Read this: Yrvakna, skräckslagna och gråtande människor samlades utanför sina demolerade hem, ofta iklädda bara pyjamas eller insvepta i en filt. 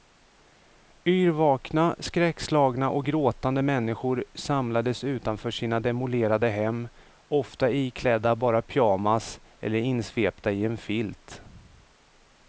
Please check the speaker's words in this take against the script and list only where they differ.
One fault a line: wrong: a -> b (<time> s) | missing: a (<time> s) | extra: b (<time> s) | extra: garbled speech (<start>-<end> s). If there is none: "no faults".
no faults